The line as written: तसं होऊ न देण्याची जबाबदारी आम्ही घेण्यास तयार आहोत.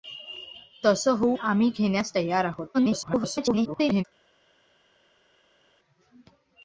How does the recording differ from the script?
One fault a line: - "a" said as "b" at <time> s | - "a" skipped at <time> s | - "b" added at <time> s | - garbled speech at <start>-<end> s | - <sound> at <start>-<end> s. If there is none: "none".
- "न देण्याची जबाबदारी" skipped at 1.4 s
- garbled speech at 2.7-4.0 s